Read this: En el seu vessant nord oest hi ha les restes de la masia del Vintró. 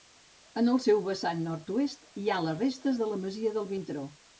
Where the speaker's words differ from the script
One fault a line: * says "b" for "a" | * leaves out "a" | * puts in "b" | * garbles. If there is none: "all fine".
all fine